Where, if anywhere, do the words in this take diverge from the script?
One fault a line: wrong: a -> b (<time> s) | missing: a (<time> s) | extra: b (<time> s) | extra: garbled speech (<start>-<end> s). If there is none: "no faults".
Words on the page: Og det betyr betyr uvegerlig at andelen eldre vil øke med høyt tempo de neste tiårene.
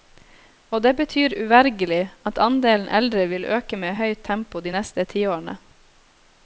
missing: betyr (1.4 s)